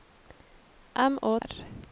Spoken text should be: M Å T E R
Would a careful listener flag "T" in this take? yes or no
yes